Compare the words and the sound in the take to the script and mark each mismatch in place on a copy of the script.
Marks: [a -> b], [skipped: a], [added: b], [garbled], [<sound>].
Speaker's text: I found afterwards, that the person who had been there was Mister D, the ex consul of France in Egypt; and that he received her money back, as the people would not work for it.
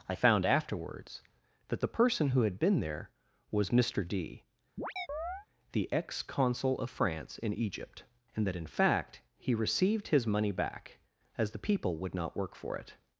I found afterwards, that the person who had been there was Mister D, [chirp] the ex consul of France in Egypt; and that [added: in fact] he received [her -> his] money back, as the people would not work for it.